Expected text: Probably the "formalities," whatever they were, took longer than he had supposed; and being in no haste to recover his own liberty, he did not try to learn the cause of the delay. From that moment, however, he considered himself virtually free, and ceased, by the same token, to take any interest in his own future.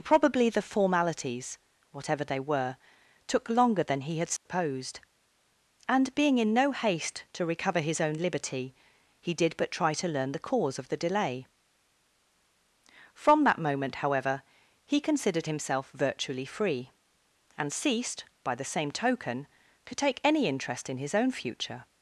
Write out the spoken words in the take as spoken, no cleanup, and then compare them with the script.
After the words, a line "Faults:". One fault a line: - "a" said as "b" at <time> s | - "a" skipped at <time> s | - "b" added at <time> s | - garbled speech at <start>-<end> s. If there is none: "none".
Probably the "formalities," whatever they were, took longer than he had supposed; and being in no haste to recover his own liberty, he did but try to learn the cause of the delay. From that moment, however, he considered himself virtually free, and ceased, by the same token, to take any interest in his own future.
Faults:
- "not" said as "but" at 9.6 s